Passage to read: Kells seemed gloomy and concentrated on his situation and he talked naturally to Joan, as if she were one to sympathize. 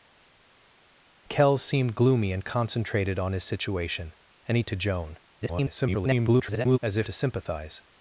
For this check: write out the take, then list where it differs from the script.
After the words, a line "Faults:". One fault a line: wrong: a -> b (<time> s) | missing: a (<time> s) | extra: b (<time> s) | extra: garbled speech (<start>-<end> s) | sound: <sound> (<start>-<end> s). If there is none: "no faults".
Kells seemed gloomy and concentrated on his situation and he to Joan, [garbled] as if to sympathize.
Faults:
missing: talked naturally (4.6 s)
extra: garbled speech (5.4-6.8 s)
missing: she were one (7.1 s)